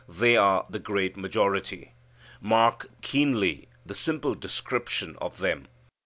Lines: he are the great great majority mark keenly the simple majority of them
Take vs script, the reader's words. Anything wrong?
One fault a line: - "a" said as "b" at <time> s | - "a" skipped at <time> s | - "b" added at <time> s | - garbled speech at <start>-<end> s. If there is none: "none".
- "he" said as "they" at 0.1 s
- "great" skipped at 1.2 s
- "majority" said as "description" at 4.3 s